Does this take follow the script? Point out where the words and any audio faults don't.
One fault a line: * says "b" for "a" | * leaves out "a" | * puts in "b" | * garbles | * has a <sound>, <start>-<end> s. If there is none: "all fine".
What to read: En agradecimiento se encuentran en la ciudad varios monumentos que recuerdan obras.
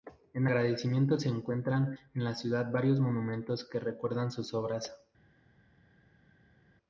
* puts in "sus"